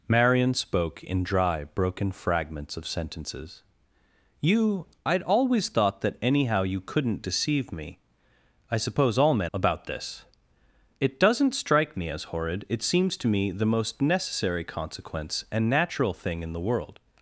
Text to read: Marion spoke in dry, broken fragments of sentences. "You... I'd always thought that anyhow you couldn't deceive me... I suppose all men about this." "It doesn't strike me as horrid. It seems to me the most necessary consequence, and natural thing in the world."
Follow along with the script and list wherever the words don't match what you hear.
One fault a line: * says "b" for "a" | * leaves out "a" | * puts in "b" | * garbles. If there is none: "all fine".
all fine